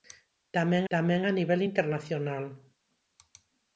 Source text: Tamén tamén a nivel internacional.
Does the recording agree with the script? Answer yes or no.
yes